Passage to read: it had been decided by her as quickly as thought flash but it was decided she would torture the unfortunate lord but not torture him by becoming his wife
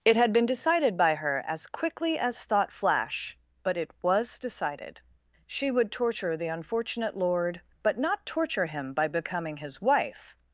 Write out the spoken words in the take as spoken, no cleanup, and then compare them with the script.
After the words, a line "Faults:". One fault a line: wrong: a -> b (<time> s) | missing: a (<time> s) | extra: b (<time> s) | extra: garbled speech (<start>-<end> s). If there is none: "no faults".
it had been decided by her as quickly as thought flash but it was decided she would torture the unfortunate lord but not torture him by becoming his wife
Faults:
no faults